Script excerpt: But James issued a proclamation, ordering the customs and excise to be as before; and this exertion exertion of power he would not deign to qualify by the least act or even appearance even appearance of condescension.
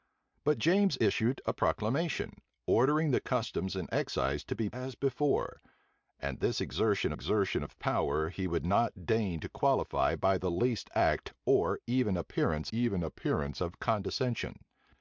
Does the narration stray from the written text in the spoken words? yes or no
no